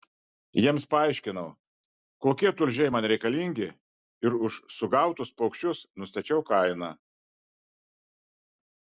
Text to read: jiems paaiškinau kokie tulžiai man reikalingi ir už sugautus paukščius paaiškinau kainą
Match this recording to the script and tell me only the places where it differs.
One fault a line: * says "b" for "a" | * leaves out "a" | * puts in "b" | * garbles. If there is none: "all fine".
* says "nustačiau" for "paaiškinau"